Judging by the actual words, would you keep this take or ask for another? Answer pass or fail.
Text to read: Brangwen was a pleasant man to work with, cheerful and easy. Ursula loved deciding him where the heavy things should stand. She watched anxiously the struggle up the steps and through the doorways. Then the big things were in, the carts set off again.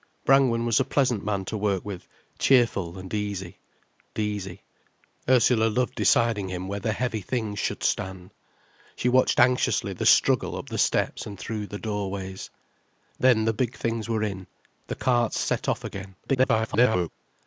fail